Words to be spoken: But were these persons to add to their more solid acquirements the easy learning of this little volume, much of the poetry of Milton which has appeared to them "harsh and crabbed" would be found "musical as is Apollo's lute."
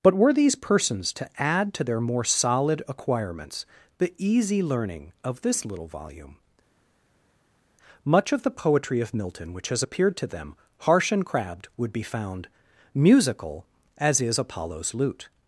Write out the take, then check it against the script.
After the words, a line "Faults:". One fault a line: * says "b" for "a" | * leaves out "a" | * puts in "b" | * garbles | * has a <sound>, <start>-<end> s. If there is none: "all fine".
But were these persons to add to their more solid acquirements the easy learning of this little volume, much of the poetry of Milton which has appeared to them "harsh and crabbed" would be found "musical as is Apollo's lute."
Faults:
all fine